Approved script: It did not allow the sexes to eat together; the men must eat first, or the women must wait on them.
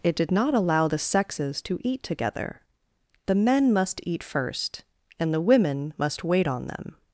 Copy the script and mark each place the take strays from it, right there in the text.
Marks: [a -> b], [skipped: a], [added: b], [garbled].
It did not allow the sexes to eat together; the men must eat first, [or -> and] the women must wait on them.